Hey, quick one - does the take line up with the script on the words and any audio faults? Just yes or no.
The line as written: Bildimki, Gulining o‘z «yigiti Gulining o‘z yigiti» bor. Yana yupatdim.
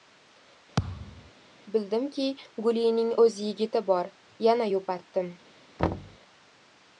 no